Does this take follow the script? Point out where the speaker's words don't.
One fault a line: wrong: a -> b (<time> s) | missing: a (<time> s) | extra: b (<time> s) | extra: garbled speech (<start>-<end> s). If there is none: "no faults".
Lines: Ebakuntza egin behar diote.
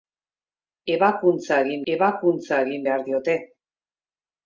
extra: ebakuntza egin (1.9 s)